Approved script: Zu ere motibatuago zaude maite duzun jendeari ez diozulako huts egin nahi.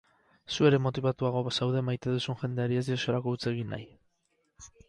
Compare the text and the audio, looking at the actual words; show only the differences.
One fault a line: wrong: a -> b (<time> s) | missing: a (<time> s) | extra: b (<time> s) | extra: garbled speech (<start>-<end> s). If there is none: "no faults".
no faults